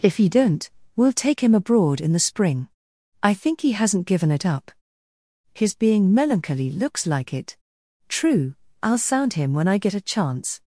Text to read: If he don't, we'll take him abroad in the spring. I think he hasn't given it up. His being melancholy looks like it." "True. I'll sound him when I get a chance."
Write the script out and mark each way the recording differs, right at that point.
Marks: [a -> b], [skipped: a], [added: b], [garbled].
If he don't, we'll take him abroad in the spring. I think he hasn't given it up. His being melancholy looks like it." "True. I'll sound him when I get a chance."